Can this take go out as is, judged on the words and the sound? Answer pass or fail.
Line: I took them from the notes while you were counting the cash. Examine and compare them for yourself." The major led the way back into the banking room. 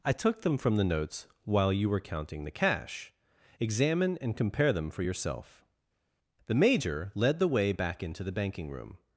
pass